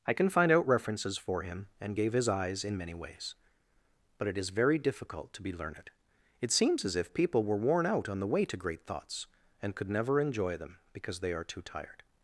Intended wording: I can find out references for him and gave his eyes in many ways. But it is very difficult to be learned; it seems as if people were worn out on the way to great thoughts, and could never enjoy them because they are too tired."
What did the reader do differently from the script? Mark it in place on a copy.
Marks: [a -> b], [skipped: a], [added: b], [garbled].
I can find out references for him and gave his eyes in many ways. But it is very difficult to be learned; it seems as if people were worn out on the way to great thoughts, and could never enjoy them because they are too tired."